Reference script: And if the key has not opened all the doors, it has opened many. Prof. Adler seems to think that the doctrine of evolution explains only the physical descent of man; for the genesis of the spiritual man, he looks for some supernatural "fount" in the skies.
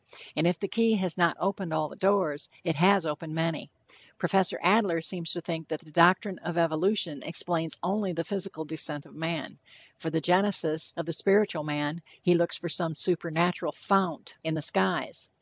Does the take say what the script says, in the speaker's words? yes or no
yes